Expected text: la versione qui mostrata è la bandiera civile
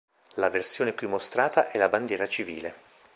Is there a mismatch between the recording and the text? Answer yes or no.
no